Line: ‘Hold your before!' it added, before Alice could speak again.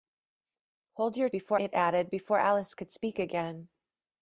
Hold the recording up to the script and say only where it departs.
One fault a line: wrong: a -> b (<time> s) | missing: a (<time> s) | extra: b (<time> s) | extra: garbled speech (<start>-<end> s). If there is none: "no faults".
no faults